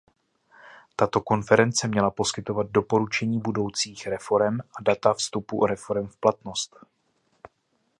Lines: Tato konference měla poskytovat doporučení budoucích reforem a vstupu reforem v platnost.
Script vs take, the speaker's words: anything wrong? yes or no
yes